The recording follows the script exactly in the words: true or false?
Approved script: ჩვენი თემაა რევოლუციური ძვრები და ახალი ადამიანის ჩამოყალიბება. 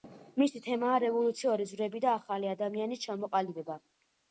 false